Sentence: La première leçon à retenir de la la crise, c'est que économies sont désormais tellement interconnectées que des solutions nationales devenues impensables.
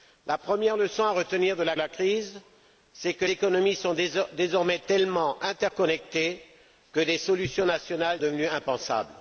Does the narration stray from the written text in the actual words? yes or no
no